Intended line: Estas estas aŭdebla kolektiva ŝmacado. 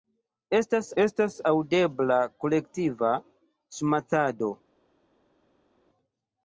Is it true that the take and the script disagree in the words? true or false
false